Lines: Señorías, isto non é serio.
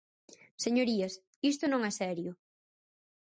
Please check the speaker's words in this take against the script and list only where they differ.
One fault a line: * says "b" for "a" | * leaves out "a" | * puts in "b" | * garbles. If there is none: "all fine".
all fine